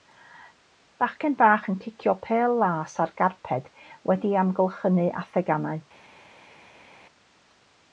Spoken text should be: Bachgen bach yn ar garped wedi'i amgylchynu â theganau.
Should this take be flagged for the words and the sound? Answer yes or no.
yes